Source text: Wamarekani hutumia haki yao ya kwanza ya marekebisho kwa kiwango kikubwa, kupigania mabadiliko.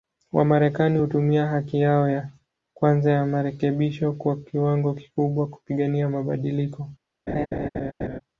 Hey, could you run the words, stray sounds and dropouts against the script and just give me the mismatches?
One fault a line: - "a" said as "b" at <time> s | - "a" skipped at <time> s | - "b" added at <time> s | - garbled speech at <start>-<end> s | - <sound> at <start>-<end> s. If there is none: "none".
- laugh at 7.3-8.2 s